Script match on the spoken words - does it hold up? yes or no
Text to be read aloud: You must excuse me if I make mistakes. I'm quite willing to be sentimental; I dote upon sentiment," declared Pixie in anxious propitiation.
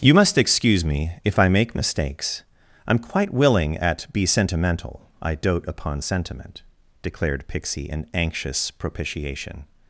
no